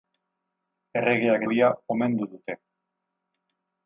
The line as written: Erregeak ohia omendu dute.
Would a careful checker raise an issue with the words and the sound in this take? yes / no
no